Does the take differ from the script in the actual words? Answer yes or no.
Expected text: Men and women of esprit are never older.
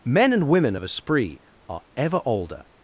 yes